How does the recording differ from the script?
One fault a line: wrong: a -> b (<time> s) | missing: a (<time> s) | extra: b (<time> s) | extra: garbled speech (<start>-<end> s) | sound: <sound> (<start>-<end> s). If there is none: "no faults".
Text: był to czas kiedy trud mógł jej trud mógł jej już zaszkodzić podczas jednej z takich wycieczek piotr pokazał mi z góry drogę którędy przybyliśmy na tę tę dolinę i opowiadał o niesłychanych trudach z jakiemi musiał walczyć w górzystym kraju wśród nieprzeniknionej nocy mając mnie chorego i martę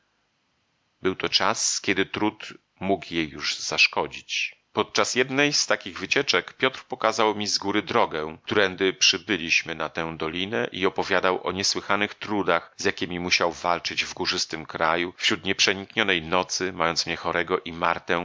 missing: trud mógł jej (3.3 s)
missing: tę (10.2 s)